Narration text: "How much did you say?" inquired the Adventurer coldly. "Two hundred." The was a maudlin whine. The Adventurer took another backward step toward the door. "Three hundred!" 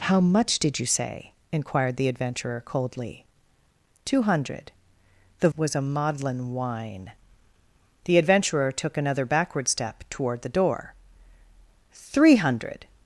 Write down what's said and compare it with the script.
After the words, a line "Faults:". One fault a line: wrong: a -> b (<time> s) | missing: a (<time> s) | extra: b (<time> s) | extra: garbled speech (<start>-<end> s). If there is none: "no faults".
"How much did you say?" inquired the Adventurer coldly. "Two hundred." The was a maudlin whine. The Adventurer took another backward step toward the door. "Three hundred!"
Faults:
no faults